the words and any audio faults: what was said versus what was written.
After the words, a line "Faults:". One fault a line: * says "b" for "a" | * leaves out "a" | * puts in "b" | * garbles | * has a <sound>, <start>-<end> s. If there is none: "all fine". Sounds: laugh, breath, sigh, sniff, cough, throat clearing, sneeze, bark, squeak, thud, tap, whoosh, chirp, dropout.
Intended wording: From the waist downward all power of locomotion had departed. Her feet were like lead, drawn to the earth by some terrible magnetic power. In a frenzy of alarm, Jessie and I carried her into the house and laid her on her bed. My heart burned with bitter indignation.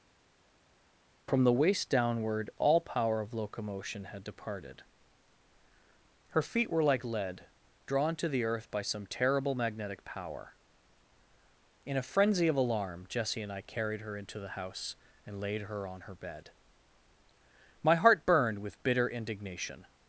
From the waist downward all power of locomotion had departed. Her feet were like lead, drawn to the earth by some terrible magnetic power. In a frenzy of alarm, Jessie and I carried her into the house and laid her on her bed. My heart burned with bitter indignation.
Faults:
all fine